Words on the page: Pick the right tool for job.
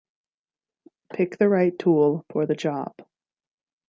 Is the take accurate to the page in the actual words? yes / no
no